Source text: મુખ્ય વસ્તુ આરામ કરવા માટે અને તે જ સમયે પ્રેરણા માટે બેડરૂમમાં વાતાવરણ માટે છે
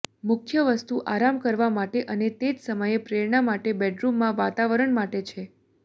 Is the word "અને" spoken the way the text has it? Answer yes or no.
yes